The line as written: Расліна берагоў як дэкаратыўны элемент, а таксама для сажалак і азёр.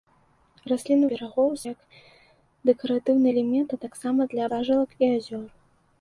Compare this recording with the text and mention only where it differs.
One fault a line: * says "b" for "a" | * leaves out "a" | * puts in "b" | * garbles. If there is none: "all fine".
all fine